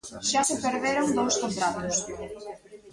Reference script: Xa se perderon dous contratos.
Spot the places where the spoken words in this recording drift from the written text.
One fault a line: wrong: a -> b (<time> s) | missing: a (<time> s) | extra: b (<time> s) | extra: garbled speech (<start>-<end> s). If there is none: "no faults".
no faults